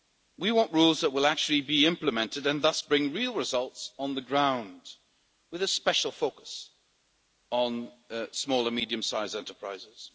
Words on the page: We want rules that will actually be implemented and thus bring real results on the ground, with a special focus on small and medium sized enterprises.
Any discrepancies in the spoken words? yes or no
no